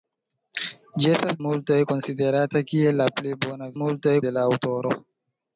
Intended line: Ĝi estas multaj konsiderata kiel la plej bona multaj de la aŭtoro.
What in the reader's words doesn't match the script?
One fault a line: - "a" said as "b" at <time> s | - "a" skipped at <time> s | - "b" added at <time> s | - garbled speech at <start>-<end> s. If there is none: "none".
none